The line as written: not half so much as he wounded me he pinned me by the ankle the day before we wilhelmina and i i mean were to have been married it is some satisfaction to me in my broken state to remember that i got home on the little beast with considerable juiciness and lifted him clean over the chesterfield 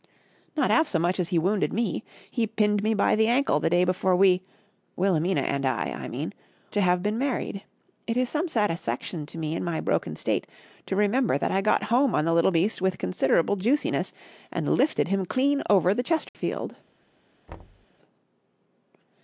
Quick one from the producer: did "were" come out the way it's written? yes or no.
no